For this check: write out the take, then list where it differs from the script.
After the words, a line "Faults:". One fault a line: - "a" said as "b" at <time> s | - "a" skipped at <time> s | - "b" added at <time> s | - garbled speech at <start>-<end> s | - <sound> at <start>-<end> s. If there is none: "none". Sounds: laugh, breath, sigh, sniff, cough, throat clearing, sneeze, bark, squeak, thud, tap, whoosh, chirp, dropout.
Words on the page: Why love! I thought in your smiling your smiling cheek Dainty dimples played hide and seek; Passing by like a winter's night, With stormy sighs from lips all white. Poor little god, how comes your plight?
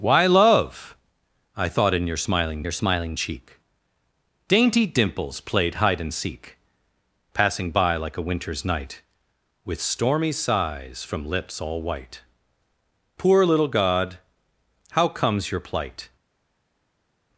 Why love! I thought in your smiling your smiling cheek Dainty dimples played hide and seek; Passing by like a winter's night, With stormy sighs from lips all white. Poor little god, how comes your plight?
Faults:
none